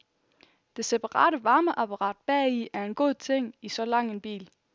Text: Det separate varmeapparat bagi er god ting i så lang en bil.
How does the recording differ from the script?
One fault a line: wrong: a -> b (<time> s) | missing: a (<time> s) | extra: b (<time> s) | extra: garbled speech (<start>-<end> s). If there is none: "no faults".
extra: en (2.9 s)